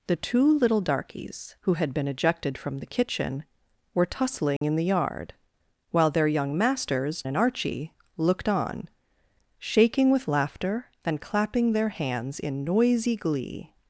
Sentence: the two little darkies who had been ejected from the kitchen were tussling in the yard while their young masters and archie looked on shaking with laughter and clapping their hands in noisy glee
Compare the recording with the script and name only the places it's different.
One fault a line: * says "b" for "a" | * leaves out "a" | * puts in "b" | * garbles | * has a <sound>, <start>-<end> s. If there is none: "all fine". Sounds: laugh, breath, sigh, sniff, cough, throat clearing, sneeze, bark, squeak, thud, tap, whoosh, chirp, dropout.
* has a dropout, 4.6-4.6 s